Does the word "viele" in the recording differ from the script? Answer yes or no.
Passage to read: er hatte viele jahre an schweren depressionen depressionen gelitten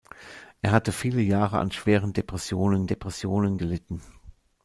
no